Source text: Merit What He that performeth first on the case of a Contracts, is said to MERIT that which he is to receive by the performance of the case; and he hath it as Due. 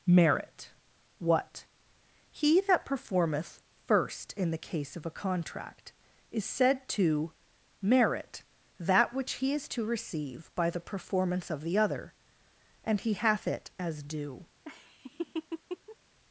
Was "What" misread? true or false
false